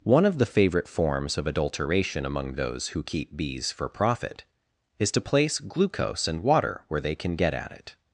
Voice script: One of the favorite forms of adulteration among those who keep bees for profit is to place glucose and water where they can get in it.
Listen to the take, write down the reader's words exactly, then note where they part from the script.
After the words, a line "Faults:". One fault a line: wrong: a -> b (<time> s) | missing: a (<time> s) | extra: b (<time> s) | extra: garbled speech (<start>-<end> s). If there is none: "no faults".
One of the favorite forms of adulteration among those who keep bees for profit is to place glucose and water where they can get at it.
Faults:
wrong: in -> at (7.5 s)